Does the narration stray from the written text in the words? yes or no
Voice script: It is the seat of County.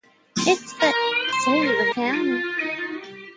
no